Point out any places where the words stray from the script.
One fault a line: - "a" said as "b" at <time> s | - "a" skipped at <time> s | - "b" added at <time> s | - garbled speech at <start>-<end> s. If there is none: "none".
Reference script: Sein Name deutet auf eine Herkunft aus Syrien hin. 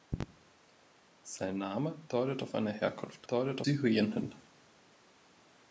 - "aus" said as "deutet" at 3.3 s